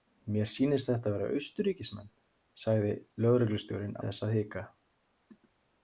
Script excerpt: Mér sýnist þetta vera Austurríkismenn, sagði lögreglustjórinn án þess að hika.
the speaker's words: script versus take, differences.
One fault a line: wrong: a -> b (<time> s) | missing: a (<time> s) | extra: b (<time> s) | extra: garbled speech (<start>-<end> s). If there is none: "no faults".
missing: án (3.9 s)